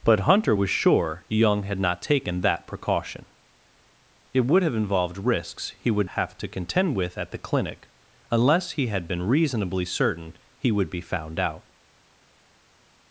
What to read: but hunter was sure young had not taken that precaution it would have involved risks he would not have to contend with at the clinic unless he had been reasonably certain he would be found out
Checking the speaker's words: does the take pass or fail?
fail